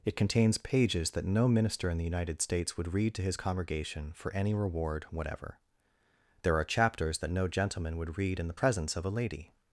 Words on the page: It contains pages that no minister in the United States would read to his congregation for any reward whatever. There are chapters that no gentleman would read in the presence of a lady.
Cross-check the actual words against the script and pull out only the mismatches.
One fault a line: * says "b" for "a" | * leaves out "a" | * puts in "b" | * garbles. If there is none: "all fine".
all fine